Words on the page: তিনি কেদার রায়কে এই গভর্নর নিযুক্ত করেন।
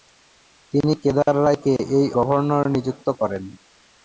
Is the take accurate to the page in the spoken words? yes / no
yes